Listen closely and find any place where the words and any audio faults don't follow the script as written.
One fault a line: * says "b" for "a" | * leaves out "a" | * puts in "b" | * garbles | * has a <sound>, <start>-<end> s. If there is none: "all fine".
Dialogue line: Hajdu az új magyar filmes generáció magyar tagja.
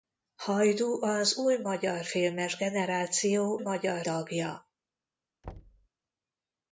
* has a thud, 5.4-5.9 s